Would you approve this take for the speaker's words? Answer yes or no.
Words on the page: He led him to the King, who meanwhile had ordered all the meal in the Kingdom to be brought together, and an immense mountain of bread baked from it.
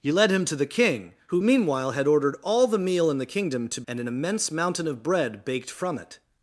no